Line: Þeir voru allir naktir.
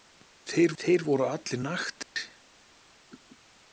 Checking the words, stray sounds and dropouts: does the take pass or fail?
fail